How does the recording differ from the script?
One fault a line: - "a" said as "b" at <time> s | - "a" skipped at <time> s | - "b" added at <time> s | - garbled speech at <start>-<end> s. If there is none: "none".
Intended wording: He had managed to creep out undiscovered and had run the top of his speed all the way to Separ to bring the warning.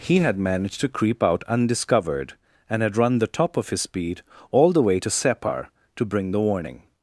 none